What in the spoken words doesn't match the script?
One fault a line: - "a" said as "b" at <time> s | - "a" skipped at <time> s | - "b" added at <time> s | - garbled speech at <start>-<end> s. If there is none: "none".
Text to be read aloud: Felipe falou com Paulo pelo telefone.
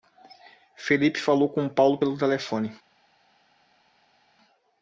none